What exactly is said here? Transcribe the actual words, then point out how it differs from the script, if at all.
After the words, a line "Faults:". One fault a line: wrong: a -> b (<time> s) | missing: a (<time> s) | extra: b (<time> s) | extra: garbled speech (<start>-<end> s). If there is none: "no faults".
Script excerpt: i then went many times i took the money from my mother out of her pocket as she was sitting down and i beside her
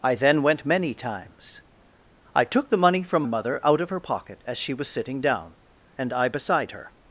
i then went many times i took the money from mother out of her pocket as she was sitting down and i beside her
Faults:
missing: my (3.2 s)